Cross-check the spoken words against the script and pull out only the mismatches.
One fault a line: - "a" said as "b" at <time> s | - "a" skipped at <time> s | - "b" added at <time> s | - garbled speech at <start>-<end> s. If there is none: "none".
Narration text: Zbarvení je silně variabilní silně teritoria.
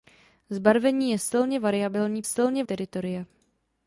none